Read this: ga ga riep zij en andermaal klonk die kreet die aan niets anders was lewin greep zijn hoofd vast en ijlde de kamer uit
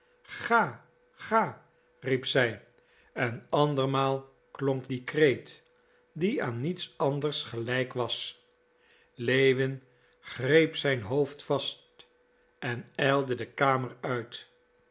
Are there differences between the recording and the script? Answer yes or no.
yes